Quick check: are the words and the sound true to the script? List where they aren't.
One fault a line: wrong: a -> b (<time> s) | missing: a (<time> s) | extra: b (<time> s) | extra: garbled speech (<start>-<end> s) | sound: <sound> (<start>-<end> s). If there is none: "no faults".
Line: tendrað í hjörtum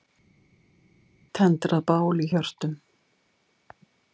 extra: bál (1.9 s)